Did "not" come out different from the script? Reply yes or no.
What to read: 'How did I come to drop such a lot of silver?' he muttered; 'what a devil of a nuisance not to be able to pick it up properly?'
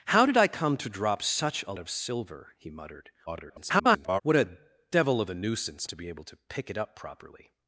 yes